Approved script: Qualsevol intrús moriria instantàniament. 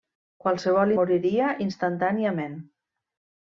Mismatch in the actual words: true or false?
true